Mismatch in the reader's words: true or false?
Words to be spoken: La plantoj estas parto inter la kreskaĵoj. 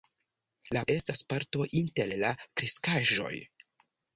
true